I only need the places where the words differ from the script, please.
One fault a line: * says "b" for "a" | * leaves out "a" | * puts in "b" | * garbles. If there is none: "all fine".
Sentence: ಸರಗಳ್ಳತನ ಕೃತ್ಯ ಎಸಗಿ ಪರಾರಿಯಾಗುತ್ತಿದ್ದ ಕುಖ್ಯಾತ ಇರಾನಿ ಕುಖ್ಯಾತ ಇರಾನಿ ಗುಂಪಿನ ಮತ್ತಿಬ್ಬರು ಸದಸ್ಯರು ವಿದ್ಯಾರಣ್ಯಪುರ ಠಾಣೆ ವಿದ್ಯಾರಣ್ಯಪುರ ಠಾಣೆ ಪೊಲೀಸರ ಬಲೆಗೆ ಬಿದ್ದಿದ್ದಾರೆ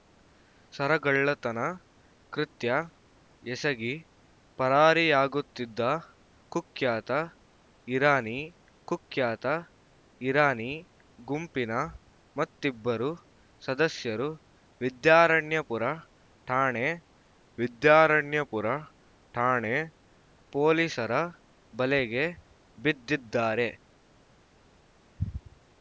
all fine